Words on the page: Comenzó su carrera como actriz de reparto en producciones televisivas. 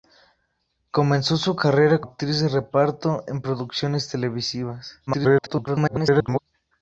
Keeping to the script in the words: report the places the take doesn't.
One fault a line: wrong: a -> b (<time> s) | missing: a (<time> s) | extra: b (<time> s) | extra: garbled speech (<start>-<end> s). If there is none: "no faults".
missing: como (2.0 s)
extra: garbled speech (5.1-6.4 s)